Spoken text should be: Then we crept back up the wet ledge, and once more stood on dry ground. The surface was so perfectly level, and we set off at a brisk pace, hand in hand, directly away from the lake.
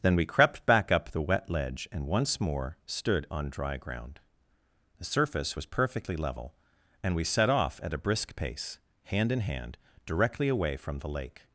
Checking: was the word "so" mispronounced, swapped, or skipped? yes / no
yes